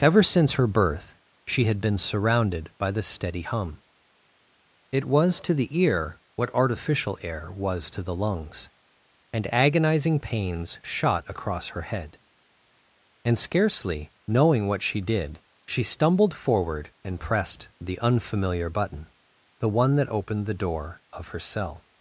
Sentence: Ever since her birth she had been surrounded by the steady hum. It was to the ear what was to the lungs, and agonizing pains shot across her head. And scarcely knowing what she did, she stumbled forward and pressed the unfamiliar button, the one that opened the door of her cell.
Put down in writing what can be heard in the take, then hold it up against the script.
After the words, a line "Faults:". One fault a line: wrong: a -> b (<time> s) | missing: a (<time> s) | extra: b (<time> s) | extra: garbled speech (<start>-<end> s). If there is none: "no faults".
Ever since her birth she had been surrounded by the steady hum. It was to the ear what artificial air was to the lungs, and agonizing pains shot across her head. And scarcely knowing what she did, she stumbled forward and pressed the unfamiliar button, the one that opened the door of her cell.
Faults:
extra: artificial air (6.5 s)